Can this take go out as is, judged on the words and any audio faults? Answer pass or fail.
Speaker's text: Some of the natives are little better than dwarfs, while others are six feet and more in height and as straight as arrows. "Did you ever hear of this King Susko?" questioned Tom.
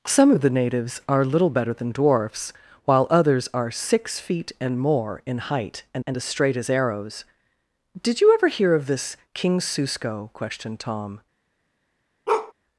fail